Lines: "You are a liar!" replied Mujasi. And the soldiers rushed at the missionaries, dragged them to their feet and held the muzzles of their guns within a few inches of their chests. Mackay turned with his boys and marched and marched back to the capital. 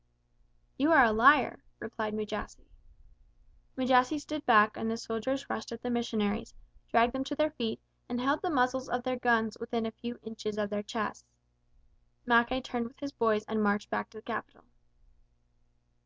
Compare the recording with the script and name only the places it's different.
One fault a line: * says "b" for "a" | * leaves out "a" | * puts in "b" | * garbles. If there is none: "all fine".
* puts in "Mujasi stood back"
* leaves out "and marched"